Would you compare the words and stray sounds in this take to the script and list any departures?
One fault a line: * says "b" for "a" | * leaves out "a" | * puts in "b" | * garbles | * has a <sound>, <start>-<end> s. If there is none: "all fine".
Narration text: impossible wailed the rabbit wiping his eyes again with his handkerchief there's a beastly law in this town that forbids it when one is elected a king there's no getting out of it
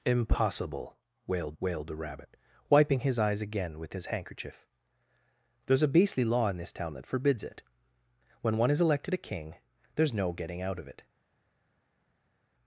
* puts in "wailed"